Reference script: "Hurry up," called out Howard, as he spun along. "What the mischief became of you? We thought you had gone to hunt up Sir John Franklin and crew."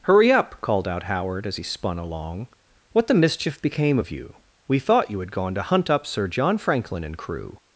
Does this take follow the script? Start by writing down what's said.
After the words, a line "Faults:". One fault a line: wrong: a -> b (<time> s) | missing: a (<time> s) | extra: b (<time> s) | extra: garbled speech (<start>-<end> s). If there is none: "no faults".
"Hurry up," called out Howard, as he spun along. "What the mischief became of you? We thought you had gone to hunt up Sir John Franklin and crew."
Faults:
no faults